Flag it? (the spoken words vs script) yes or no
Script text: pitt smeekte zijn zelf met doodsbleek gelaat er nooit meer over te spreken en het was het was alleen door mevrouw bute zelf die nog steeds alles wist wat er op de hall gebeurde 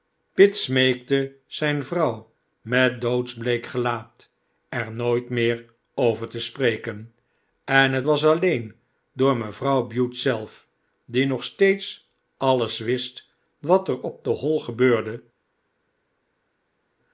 yes